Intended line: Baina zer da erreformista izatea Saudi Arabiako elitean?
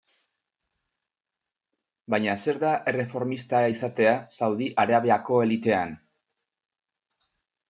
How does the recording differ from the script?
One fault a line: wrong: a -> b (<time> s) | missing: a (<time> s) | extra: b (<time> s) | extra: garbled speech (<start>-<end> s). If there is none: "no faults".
no faults